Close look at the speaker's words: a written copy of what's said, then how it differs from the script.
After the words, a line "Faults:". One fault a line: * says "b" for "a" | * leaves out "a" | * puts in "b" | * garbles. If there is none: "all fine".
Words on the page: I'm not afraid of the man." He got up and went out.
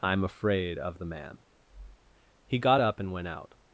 I'm afraid of the man." He got up and went out.
Faults:
* leaves out "not"